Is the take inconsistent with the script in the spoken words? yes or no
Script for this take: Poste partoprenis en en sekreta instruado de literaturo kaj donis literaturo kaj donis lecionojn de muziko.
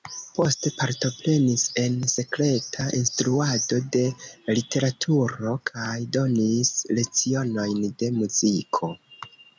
yes